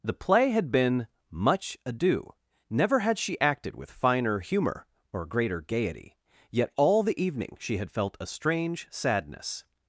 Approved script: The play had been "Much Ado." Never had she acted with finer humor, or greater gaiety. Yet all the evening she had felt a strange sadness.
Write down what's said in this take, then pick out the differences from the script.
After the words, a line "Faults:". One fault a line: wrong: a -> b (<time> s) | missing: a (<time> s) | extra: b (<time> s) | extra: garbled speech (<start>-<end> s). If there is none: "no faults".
The play had been "Much Ado." Never had she acted with finer humor, or greater gaiety. Yet all the evening she had felt a strange sadness.
Faults:
no faults